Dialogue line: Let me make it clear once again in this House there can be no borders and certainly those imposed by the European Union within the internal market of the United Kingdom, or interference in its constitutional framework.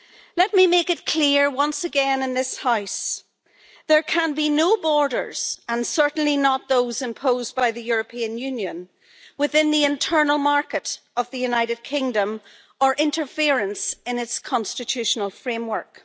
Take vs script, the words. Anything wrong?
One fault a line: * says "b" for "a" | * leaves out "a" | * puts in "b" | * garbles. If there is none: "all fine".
* puts in "not"